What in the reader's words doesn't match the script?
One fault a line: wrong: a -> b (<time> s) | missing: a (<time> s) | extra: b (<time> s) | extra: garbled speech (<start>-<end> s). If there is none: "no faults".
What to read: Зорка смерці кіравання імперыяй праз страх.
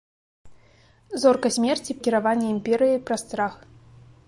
no faults